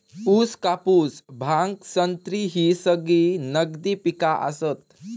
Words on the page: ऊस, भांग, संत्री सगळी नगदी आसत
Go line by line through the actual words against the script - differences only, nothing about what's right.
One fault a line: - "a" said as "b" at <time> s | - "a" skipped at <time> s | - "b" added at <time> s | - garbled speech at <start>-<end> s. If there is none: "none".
- "कापूस" added at 0.6 s
- "ही" added at 2.5 s
- "पिका" added at 3.9 s